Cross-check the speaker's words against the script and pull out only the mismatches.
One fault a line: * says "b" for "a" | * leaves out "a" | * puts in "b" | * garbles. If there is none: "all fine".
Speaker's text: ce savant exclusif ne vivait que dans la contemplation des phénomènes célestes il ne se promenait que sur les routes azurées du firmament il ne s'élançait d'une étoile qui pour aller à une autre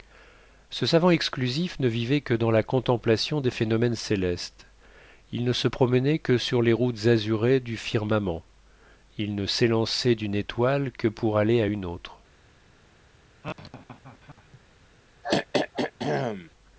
* says "que" for "qui"